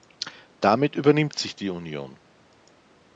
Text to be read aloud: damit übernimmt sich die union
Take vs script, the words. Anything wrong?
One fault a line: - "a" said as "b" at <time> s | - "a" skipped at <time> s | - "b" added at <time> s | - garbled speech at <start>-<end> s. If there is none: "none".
none